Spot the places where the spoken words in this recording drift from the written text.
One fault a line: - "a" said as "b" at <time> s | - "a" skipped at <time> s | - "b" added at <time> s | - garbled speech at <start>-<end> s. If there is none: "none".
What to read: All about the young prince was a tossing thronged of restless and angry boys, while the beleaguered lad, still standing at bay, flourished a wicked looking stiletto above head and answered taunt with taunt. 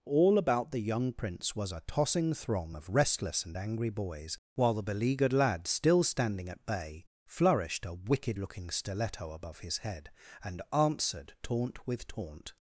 - "thronged" said as "throng" at 2.3 s
- "his" added at 9.6 s